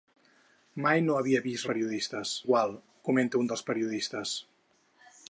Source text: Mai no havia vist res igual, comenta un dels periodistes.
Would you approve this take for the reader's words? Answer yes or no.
no